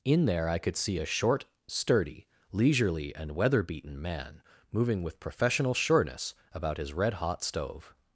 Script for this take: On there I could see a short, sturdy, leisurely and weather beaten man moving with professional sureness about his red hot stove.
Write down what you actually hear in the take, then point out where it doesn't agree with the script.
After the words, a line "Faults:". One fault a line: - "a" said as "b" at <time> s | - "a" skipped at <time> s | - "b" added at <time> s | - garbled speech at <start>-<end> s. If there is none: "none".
In there I could see a short, sturdy, leisurely and weather beaten man moving with professional sureness about his red hot stove.
Faults:
- "On" said as "In" at 0.0 s